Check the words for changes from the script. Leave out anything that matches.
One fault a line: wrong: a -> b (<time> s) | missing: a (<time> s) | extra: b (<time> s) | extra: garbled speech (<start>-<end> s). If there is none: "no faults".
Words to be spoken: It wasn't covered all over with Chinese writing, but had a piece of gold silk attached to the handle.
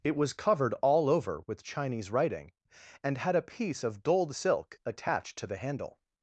wrong: wasn't -> was (0.1 s)
wrong: but -> and (3.0 s)